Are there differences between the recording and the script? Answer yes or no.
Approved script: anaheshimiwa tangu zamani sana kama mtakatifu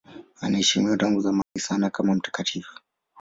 no